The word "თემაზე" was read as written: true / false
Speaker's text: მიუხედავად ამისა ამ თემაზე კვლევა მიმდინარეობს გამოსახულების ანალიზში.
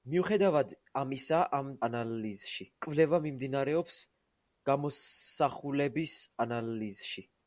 false